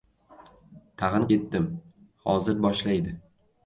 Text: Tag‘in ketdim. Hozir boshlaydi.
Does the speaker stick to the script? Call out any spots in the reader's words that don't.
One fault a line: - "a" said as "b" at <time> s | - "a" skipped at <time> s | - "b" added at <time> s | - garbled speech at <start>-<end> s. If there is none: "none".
none